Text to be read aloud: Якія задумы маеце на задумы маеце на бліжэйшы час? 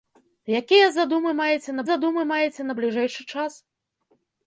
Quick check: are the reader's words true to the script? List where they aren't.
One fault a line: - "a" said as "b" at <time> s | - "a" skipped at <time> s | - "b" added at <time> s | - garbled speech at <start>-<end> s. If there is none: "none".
none